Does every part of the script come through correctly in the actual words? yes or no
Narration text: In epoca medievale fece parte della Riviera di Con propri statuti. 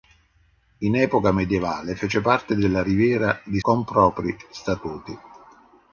yes